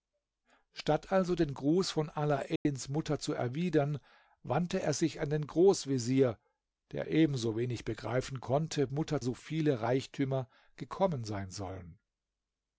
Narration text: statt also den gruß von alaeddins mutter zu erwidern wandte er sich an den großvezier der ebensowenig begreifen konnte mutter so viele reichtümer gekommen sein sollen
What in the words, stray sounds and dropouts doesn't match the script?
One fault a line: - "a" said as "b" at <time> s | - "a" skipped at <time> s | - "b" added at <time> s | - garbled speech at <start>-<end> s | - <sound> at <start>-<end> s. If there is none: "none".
- dropout at 2.6-2.7 s